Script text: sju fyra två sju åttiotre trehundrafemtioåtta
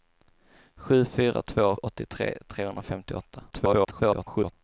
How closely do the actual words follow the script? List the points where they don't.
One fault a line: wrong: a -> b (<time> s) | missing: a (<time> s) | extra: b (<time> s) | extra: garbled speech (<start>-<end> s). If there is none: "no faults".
missing: sju (1.8 s)
extra: garbled speech (3.5-4.5 s)